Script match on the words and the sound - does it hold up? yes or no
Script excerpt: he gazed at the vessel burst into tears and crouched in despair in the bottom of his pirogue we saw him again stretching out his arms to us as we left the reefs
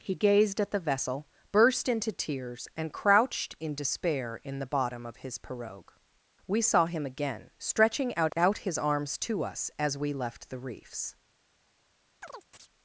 no